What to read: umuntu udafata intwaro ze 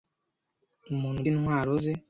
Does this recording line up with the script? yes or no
no